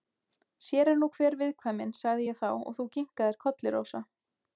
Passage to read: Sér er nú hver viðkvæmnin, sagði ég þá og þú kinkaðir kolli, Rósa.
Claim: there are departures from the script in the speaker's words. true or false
false